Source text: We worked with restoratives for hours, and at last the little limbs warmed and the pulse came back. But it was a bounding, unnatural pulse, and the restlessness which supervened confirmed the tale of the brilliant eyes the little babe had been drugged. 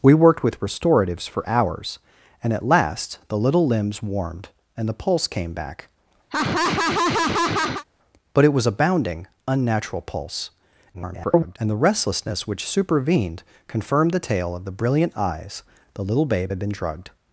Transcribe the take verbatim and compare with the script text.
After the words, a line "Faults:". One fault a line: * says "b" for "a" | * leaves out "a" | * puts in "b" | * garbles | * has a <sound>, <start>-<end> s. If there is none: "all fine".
We worked with restoratives for hours, and at last the little limbs warmed and the pulse came back. But it was a bounding, unnatural pulse, [garbled] and the restlessness which supervened confirmed the tale of the brilliant eyes the little babe had been drugged.
Faults:
* has a laugh, 6.3-7.8 s
* garbles